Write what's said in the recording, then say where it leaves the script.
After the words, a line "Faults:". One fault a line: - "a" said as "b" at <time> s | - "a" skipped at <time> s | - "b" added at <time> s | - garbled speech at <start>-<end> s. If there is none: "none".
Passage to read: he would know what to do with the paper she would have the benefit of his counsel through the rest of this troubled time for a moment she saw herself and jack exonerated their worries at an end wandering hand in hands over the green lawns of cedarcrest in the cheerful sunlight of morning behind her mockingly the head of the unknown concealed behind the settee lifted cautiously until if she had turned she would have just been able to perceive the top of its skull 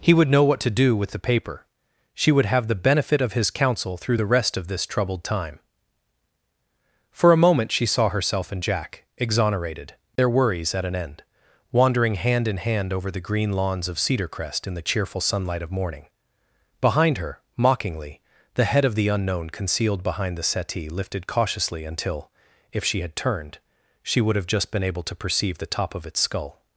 he would know what to do with the paper she would have the benefit of his counsel through the rest of this troubled time for a moment she saw herself and jack exonerated their worries at an end wandering hand in hand over the green lawns of cedarcrest in the cheerful sunlight of morning behind her mockingly the head of the unknown concealed behind the settee lifted cautiously until if she had turned she would have just been able to perceive the top of its skull
Faults:
- "hands" said as "hand" at 12.6 s